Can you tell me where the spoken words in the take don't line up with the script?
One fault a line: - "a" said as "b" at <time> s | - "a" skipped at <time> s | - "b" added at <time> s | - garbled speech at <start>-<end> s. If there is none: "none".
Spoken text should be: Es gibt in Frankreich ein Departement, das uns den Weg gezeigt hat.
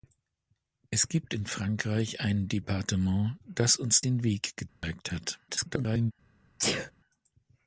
- garbled speech at 5.5-6.1 s